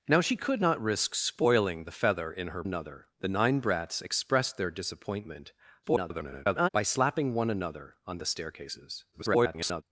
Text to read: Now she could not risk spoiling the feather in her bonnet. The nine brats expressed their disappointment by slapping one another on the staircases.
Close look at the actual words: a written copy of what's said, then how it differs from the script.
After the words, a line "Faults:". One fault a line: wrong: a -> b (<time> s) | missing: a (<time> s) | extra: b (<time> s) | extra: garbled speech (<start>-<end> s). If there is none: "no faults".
Now she could not risk spoiling the feather in her another. The nine brats expressed their disappointment [garbled] by slapping one another on the staircases. [garbled]
Faults:
wrong: bonnet -> another (2.6 s)
extra: garbled speech (5.8-6.7 s)
extra: garbled speech (9.1-9.8 s)